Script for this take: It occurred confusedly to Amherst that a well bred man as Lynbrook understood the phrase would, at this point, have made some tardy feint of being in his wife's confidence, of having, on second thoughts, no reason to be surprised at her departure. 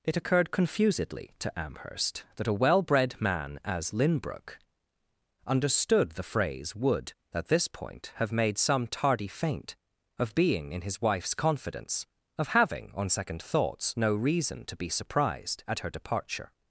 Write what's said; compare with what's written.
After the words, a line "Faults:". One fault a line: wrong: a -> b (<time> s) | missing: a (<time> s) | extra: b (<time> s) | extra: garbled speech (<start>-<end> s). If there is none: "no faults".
It occurred confusedly to Amherst that a well bred man as Lynbrook understood the phrase would, at this point, have made some tardy feint of being in his wife's confidence, of having, on second thoughts, no reason to be surprised at her departure.
Faults:
no faults